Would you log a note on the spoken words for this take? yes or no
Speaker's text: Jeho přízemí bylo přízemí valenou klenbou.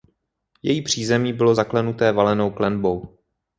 yes